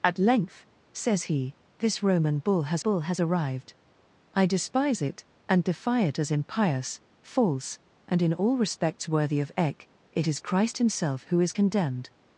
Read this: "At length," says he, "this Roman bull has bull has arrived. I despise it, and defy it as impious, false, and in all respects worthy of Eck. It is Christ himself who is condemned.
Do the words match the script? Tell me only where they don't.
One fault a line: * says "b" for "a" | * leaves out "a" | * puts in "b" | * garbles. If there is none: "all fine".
all fine